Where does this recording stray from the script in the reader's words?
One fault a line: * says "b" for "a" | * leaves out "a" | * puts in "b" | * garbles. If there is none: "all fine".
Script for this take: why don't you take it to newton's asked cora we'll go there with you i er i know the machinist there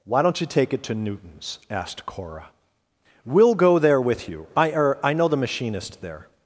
all fine